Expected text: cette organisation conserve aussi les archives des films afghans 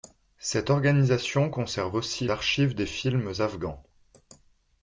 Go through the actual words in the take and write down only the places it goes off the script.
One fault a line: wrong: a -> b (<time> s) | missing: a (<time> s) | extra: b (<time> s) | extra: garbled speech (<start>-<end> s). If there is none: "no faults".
missing: les (2.3 s)